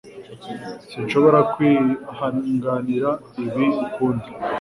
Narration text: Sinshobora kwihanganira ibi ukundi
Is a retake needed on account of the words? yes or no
no